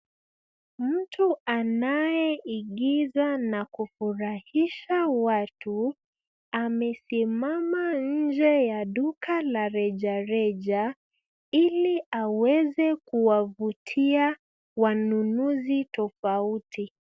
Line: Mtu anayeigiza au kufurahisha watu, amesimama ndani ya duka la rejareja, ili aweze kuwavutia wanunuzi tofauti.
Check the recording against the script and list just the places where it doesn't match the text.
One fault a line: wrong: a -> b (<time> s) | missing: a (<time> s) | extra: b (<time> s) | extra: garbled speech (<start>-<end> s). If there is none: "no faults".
wrong: au -> na (3.4 s)
wrong: ndani -> nje (7.9 s)